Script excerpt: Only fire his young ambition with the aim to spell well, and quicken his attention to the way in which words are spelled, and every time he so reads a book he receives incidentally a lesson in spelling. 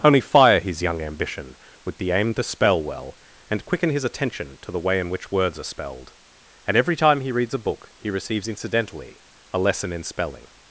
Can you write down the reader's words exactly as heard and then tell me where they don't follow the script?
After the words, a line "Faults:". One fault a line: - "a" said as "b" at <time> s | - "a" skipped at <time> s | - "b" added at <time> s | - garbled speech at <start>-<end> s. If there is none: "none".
Only fire his young ambition with the aim to spell well, and quicken his attention to the way in which words are spelled, and every time he reads a book he receives incidentally a lesson in spelling.
Faults:
- "so" skipped at 7.3 s